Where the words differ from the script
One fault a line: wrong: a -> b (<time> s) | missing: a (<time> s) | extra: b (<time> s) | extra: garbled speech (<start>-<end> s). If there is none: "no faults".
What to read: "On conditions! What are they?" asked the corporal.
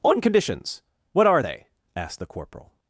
no faults